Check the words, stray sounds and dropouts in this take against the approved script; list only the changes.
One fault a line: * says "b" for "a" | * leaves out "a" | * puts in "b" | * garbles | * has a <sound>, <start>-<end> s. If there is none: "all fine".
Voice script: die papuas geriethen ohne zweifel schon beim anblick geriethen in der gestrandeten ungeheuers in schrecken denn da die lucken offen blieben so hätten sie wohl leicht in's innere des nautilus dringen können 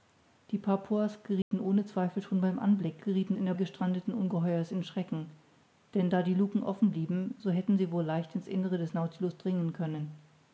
* has a dropout, 1.4-1.5 s